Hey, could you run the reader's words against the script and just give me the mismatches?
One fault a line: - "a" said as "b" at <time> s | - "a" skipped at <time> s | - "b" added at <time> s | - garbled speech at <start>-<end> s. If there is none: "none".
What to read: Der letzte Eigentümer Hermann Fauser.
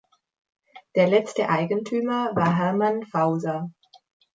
- "war" added at 2.3 s